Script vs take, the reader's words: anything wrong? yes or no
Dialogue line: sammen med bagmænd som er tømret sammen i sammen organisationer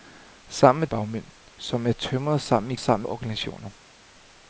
no